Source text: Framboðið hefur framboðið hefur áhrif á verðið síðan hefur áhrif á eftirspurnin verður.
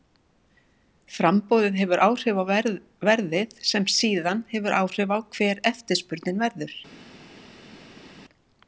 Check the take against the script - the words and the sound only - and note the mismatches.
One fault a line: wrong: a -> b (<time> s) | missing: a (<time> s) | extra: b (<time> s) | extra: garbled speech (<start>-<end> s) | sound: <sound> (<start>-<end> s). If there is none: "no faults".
missing: framboðið hefur (2.0 s)
extra: sem (3.7 s)
extra: hver (5.4 s)